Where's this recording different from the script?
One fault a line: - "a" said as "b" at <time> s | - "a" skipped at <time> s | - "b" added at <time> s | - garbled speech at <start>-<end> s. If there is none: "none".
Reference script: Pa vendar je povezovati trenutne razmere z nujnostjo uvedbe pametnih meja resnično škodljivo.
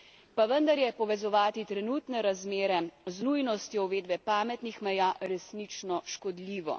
none